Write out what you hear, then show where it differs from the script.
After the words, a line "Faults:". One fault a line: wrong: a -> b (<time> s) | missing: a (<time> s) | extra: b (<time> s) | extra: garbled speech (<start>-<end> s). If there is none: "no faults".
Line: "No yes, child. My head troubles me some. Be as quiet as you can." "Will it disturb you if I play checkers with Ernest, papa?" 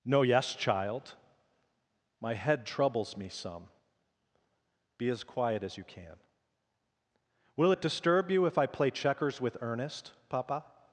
"No yes, child. My head troubles me some. Be as quiet as you can." "Will it disturb you if I play checkers with Ernest, papa?"
Faults:
no faults